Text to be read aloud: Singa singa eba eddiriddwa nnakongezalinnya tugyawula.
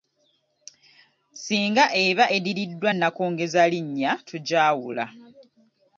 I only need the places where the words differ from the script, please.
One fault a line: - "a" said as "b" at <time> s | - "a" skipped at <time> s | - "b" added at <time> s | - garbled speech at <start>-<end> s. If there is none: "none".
- "singa" skipped at 1.9 s